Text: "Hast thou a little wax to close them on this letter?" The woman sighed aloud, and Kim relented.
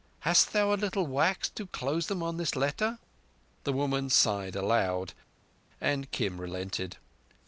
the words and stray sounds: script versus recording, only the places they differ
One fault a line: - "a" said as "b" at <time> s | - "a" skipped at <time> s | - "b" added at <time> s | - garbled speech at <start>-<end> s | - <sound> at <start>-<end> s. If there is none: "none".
none